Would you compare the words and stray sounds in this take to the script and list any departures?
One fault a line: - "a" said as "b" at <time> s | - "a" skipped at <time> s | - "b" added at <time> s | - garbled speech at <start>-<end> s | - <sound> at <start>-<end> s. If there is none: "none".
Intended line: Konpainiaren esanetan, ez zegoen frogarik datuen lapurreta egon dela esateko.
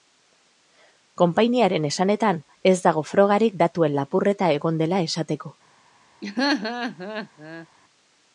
- "zegoen" said as "dago" at 2.9 s
- laugh at 6.2-7.7 s